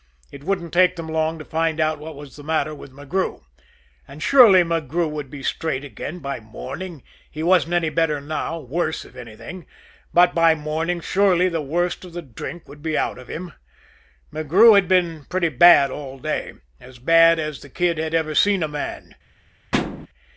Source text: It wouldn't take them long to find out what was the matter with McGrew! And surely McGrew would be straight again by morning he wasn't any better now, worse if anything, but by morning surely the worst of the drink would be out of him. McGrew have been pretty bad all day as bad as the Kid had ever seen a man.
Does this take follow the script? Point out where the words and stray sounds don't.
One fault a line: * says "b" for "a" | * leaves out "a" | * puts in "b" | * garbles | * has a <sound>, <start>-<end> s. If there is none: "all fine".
* says "had" for "have"
* has a thud, 19.7-20.1 s